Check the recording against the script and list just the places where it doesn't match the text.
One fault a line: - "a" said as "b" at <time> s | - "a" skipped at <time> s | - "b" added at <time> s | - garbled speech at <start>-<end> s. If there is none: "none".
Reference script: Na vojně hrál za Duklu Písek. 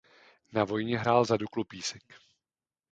none